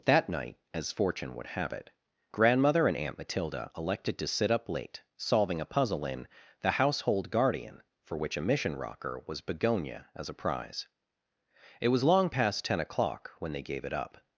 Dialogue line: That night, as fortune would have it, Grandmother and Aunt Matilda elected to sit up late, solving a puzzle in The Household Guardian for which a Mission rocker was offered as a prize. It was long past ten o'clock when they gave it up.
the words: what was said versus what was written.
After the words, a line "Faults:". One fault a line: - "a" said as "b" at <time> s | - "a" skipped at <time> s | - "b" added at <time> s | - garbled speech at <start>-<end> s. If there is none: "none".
That night, as fortune would have it, Grandmother and Aunt Matilda elected to sit up late, solving a puzzle in The Household Guardian for which a Mission rocker was begonia as a prize. It was long past ten o'clock when they gave it up.
Faults:
- "offered" said as "begonia" at 9.4 s